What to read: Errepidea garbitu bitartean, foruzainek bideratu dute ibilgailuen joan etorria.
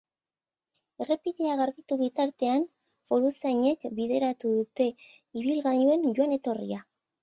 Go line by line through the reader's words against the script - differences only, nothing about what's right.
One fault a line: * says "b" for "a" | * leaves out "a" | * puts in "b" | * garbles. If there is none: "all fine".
all fine